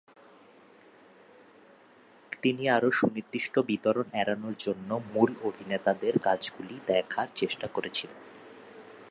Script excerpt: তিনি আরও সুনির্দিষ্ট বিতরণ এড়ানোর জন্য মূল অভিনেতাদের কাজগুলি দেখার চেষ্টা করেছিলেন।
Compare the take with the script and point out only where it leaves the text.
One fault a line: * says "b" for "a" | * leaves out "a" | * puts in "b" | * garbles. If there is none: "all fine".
all fine